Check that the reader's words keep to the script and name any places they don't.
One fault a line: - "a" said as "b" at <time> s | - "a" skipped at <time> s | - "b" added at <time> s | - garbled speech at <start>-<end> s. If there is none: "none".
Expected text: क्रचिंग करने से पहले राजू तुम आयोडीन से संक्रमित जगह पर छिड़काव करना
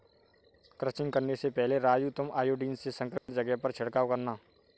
none